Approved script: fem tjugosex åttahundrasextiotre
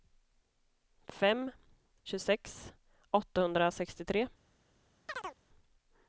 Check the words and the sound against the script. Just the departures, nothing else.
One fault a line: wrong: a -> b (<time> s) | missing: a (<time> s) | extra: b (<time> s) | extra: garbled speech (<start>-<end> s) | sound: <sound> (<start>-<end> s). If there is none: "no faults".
sound: chirp (5.1-5.4 s)